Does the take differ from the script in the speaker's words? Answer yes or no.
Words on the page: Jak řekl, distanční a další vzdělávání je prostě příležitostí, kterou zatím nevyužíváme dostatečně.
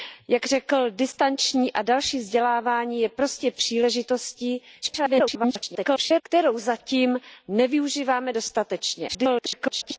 yes